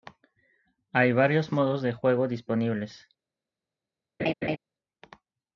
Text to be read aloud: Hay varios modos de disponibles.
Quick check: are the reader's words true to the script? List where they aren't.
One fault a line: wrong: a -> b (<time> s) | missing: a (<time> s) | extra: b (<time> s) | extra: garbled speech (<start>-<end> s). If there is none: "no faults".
extra: juego (1.9 s)